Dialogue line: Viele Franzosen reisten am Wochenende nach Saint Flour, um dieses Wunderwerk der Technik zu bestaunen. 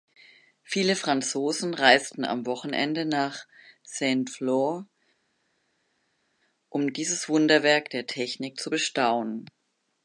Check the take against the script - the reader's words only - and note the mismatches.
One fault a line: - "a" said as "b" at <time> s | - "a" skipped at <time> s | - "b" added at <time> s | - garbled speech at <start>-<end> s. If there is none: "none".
none